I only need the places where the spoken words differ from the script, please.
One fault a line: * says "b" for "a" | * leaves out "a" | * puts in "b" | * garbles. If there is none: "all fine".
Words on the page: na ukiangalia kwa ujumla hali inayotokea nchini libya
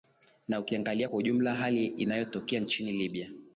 all fine